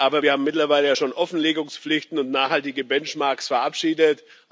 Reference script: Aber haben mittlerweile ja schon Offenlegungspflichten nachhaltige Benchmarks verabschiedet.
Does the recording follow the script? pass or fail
fail